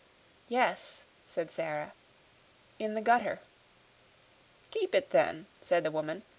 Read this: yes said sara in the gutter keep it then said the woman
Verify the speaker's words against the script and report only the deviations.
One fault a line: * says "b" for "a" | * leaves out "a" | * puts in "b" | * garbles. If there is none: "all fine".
all fine